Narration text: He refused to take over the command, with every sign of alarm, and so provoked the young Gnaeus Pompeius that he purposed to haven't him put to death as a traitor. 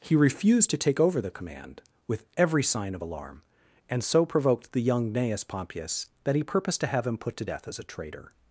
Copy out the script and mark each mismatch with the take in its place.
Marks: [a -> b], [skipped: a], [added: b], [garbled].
He refused to take over the command, with every sign of alarm, and so provoked the young Gnaeus Pompeius that he purposed to [haven't -> have] him put to death as a traitor.